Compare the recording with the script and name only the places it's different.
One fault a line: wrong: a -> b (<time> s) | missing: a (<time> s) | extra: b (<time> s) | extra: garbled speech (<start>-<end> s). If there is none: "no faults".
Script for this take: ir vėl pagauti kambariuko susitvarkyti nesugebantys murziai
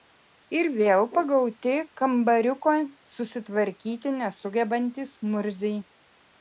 no faults